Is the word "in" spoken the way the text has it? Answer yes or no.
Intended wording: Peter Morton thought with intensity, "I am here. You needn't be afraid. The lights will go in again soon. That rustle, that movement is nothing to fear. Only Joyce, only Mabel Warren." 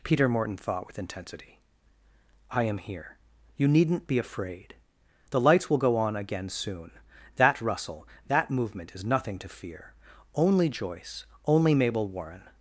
no